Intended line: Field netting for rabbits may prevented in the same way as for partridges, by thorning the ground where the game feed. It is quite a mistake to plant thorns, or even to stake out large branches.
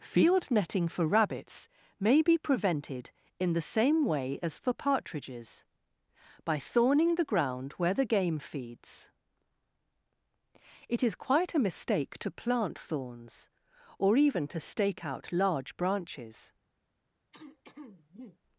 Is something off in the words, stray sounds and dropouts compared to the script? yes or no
yes